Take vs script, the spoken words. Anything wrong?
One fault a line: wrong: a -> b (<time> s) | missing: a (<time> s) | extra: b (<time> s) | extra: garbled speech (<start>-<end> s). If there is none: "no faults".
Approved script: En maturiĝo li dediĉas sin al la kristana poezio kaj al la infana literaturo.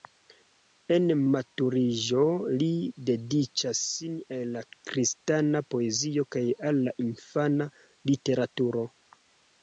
no faults